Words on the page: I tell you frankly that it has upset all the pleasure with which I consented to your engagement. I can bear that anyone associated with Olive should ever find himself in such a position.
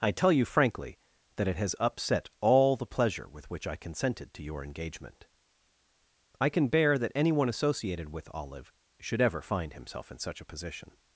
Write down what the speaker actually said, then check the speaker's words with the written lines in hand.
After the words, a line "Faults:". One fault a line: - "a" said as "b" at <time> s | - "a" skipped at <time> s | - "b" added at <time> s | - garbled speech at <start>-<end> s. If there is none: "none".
I tell you frankly that it has upset all the pleasure with which I consented to your engagement. I can bear that anyone associated with Olive should ever find himself in such a position.
Faults:
none